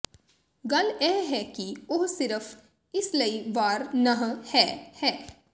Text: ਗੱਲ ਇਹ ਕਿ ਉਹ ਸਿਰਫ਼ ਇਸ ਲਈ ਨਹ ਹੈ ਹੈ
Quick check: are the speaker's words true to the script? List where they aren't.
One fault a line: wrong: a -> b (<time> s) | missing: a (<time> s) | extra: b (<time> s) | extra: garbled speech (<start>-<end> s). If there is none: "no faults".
extra: ਹੈ (1.3 s)
extra: ਵਾਰ (3.5 s)